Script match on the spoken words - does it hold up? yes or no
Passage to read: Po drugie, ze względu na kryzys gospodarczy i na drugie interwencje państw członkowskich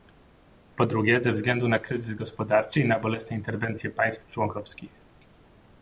no